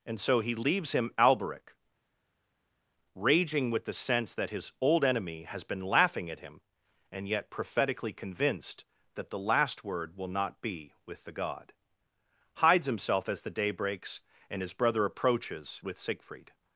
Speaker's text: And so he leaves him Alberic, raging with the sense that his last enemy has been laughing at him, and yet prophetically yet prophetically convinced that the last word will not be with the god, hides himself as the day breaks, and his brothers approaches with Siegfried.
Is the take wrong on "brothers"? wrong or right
wrong